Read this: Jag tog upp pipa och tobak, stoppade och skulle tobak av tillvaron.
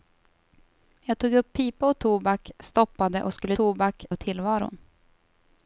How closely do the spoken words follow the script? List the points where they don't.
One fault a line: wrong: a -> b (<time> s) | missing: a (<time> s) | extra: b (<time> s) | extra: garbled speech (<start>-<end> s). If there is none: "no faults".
no faults